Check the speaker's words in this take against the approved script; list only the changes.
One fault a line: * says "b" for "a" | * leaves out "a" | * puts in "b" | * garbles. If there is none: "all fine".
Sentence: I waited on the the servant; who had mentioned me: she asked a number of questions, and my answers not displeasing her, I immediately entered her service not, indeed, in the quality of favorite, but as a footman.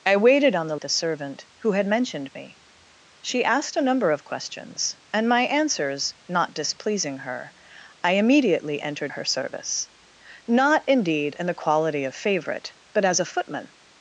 all fine